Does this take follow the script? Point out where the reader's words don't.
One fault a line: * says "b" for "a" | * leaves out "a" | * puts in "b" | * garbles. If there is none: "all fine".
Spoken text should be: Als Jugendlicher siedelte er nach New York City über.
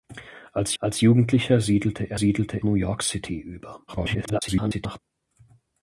* puts in "als"
* says "siedelte" for "nach"
* garbles